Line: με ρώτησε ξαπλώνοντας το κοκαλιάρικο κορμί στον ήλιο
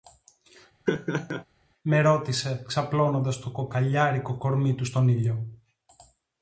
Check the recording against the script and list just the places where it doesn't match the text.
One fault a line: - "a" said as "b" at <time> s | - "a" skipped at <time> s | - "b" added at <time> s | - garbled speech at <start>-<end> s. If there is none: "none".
- "του" added at 4.7 s